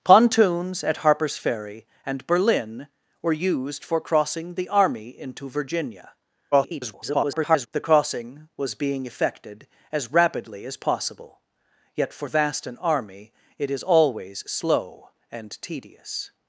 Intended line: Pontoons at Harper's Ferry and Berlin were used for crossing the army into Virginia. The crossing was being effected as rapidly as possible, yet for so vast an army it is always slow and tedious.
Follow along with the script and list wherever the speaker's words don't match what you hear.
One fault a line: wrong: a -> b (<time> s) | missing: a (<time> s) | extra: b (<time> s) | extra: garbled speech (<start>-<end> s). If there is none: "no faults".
extra: garbled speech (6.5-7.7 s)
missing: so (12.3 s)